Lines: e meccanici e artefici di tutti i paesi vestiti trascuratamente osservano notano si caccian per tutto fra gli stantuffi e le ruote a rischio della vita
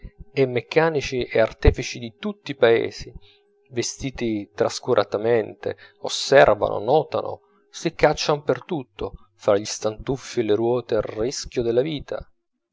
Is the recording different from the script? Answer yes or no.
no